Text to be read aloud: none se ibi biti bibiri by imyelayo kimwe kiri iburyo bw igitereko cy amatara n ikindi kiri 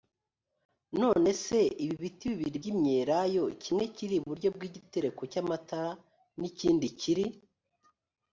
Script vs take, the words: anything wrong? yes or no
no